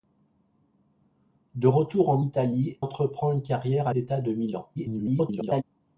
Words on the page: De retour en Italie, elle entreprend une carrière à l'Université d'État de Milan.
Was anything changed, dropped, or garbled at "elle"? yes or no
yes